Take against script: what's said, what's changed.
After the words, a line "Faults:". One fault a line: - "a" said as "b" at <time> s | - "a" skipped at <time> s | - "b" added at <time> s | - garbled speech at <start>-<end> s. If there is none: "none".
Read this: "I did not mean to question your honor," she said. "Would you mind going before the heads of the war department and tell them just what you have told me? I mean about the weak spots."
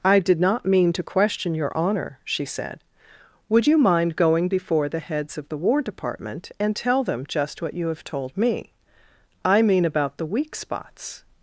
"I did not mean to question your honor," she said. "Would you mind going before the heads of the war department and tell them just what you have told me? I mean about the weak spots."
Faults:
none